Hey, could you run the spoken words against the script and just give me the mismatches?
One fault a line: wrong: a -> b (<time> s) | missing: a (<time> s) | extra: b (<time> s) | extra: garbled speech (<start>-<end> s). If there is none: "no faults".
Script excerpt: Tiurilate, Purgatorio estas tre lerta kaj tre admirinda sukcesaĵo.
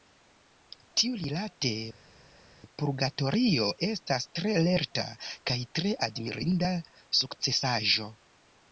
no faults